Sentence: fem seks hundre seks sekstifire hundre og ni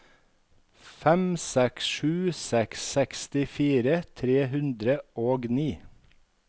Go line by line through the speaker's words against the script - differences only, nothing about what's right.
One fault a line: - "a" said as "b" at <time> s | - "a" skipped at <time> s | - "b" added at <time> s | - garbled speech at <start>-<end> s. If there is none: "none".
- "hundre" said as "sju" at 1.9 s
- "tre" added at 4.2 s